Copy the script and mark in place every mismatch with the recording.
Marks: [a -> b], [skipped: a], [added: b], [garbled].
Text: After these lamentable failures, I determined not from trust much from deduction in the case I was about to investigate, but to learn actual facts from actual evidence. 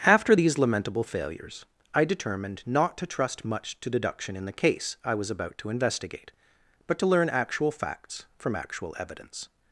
After these lamentable failures, I determined not [from -> to] trust much [from -> to] deduction in the case I was about to investigate, but to learn actual facts from actual evidence.